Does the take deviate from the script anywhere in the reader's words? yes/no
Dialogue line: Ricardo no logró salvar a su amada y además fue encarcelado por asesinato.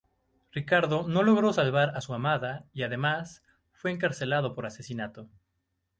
no